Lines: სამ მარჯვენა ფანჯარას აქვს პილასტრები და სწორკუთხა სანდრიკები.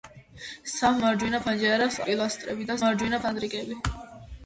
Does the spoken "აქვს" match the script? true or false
false